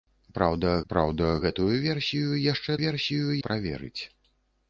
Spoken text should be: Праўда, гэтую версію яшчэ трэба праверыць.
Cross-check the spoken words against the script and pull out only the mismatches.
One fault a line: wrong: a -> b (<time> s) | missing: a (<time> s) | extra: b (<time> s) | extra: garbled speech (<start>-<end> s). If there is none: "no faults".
extra: праўда (0.9 s)
wrong: трэба -> версію (2.8 s)